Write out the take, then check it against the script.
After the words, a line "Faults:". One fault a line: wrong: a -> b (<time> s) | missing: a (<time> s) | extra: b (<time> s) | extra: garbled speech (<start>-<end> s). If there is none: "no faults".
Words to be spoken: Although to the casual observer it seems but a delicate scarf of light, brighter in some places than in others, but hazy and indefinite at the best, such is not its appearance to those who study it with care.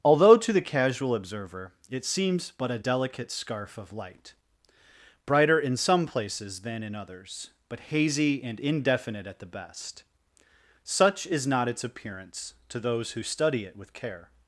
Although to the casual observer it seems but a delicate scarf of light, brighter in some places than in others, but hazy and indefinite at the best, such is not its appearance to those who study it with care.
Faults:
no faults